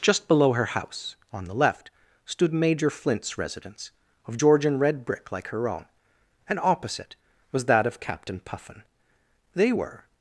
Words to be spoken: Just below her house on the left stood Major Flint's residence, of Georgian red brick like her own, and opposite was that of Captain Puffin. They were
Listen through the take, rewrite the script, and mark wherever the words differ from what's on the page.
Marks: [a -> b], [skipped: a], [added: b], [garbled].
Just below her house on the left stood Major Flint's residence, of Georgian red brick like her own, and opposite was that of Captain Puffin. They were